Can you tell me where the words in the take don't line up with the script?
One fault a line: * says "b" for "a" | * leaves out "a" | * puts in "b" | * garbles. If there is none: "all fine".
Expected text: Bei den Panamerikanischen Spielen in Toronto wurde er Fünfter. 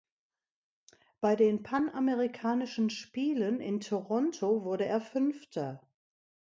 all fine